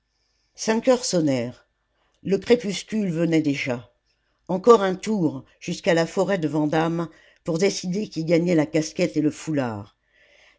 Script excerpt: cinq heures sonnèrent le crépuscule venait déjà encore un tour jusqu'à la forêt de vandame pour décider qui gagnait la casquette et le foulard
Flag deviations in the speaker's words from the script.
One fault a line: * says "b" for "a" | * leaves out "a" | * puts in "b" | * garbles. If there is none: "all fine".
all fine